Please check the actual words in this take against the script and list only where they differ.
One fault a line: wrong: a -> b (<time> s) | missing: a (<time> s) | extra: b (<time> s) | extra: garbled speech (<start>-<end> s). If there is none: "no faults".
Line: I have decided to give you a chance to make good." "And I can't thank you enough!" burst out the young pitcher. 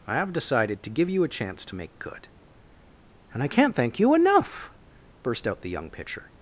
no faults